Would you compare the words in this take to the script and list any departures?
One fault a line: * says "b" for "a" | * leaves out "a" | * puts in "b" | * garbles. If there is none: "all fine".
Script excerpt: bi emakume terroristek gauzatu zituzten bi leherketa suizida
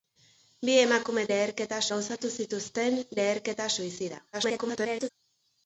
* says "leherketa" for "terroristek"
* leaves out "bi"
* garbles